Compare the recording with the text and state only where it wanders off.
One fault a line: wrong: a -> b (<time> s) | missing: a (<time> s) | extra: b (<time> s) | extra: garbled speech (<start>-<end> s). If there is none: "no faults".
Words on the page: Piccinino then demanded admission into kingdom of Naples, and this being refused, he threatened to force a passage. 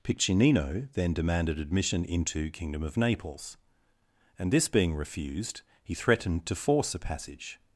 no faults